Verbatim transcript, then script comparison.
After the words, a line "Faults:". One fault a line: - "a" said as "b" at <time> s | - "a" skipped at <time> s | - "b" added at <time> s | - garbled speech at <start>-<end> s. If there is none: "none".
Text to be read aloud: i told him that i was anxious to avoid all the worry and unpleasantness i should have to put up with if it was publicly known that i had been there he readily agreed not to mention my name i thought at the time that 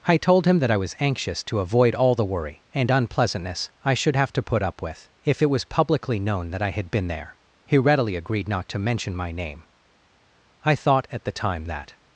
i told him that i was anxious to avoid all the worry and unpleasantness i should have to put up with if it was publicly known that i had been there he readily agreed not to mention my name i thought at the time that
Faults:
none